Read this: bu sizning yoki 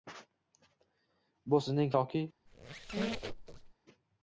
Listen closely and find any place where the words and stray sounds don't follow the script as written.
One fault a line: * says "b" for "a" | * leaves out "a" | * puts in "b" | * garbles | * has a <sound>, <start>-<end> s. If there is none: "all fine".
* has a squeak, 2.5-3.7 s